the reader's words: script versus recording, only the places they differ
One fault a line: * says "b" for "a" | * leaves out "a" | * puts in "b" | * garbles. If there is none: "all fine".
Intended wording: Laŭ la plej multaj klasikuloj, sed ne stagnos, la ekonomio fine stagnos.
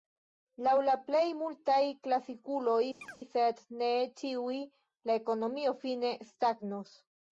* says "ĉiuj" for "stagnos"